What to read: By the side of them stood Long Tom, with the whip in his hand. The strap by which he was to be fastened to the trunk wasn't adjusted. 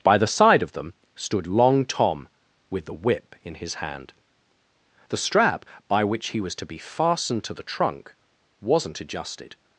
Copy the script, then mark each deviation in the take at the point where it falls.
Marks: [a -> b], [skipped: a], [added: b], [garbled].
By the side of them stood Long Tom, with the whip in his hand. The strap by which he was to be fastened to the trunk wasn't adjusted.